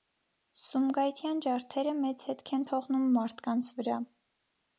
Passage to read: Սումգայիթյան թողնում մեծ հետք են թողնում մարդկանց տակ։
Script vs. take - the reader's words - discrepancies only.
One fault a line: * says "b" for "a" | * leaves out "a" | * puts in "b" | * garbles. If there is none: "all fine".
* says "ջարդերը" for "թողնում"
* says "վրա" for "տակ"